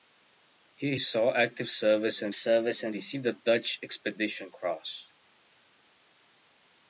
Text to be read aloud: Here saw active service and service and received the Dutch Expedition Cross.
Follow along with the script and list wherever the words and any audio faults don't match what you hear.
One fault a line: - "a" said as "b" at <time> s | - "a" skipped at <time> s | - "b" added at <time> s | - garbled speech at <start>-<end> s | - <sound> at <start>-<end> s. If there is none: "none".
none